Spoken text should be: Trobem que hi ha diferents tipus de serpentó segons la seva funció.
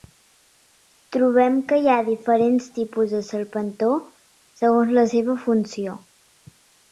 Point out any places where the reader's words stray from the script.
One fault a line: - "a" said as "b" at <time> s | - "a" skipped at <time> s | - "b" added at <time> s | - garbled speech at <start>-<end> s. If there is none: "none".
none